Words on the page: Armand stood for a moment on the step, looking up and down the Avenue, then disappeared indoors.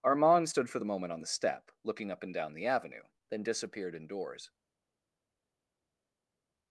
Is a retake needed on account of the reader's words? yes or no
yes